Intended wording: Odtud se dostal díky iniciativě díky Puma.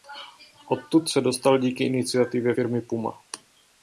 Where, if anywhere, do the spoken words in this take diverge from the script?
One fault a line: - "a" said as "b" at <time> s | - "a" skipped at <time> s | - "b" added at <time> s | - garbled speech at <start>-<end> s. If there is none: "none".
- "díky" said as "firmy" at 2.5 s